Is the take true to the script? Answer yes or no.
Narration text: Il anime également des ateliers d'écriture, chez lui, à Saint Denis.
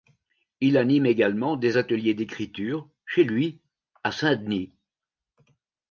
yes